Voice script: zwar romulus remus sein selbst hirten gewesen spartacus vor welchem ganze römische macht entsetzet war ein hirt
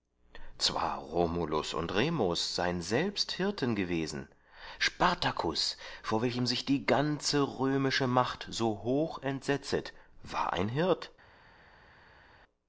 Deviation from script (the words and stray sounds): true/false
true